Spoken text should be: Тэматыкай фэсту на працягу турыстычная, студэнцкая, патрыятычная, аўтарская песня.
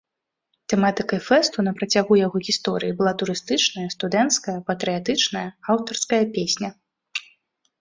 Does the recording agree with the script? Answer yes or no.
no